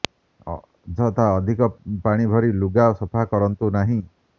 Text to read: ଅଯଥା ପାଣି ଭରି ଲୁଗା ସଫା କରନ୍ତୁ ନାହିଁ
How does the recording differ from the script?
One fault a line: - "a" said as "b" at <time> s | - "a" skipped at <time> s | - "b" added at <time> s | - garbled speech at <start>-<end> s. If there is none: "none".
- "ଅଧିକ" added at 1.4 s